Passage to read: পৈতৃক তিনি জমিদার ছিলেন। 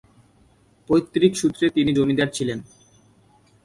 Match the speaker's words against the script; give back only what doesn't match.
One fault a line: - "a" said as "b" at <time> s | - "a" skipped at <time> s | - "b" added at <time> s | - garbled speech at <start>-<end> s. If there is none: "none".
- "সূত্রে" added at 1.4 s